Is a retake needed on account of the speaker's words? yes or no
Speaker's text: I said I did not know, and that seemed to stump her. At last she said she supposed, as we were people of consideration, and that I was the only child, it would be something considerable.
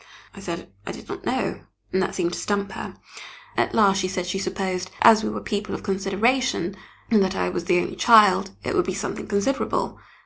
no